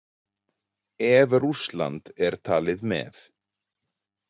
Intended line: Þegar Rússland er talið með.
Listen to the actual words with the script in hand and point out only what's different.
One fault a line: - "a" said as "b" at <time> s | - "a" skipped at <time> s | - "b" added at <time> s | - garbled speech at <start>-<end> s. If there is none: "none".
- "Þegar" said as "Ef" at 1.1 s